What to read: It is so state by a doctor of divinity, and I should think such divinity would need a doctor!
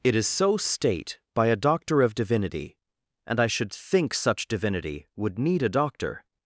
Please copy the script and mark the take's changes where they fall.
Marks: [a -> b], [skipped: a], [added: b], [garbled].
It is so state by a doctor of divinity, and I should think such divinity would need a doctor!